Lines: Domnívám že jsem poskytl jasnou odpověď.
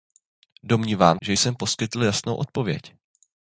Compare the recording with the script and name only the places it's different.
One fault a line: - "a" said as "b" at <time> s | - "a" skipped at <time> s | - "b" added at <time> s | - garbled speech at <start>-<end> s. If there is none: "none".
none